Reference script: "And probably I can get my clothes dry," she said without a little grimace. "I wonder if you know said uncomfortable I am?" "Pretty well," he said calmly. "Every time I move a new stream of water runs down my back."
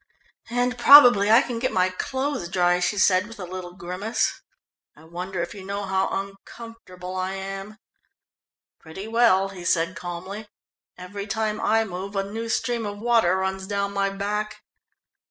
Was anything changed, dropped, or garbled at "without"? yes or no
yes